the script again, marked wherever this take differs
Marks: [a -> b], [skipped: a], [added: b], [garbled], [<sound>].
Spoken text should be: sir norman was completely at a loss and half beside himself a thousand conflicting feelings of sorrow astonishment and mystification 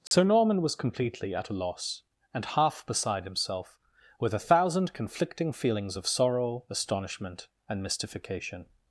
sir [dropout] norman was completely at a loss and half beside himself [added: with] a thousand conflicting feelings of sorrow astonishment and mystification